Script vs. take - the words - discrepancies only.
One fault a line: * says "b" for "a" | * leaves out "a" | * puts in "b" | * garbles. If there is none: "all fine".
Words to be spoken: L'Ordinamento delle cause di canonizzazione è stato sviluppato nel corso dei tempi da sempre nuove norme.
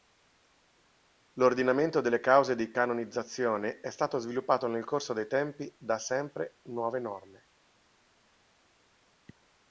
all fine